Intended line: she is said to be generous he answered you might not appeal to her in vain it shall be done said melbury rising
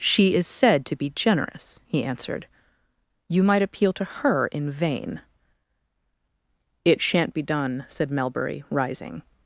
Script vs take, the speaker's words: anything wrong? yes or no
yes